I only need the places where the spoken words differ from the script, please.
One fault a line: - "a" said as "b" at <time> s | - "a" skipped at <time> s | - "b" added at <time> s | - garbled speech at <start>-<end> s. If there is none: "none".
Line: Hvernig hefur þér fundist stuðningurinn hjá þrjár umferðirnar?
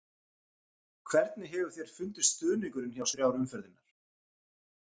none